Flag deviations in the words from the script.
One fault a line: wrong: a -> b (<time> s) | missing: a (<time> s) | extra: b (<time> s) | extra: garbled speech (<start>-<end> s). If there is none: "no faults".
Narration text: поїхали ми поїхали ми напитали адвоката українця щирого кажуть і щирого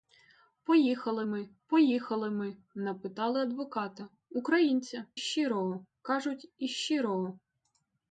no faults